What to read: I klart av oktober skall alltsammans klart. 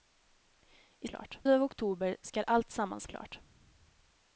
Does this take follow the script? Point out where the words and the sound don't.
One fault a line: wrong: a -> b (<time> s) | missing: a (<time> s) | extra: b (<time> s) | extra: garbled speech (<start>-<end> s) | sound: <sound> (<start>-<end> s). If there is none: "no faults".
no faults